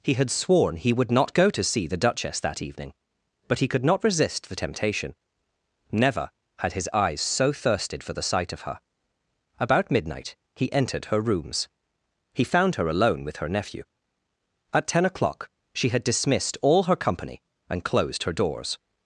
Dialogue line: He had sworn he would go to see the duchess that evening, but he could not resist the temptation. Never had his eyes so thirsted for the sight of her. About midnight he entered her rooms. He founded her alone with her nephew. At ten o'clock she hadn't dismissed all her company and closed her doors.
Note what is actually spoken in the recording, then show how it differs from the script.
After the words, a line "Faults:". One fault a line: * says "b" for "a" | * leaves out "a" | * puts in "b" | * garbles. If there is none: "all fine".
He had sworn he would not go to see the duchess that evening, but he could not resist the temptation. Never had his eyes so thirsted for the sight of her. About midnight he entered her rooms. He found her alone with her nephew. At ten o'clock she had dismissed all her company and closed her doors.
Faults:
* puts in "not"
* says "found" for "founded"
* says "had" for "hadn't"